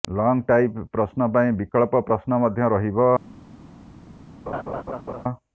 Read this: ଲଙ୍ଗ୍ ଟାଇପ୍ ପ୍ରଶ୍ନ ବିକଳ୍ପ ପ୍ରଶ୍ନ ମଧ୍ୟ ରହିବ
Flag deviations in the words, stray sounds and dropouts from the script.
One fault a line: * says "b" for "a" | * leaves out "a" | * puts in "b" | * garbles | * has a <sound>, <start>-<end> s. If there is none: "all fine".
* puts in "ପାଇଁ"
* has a laugh, 4.5-5.2 s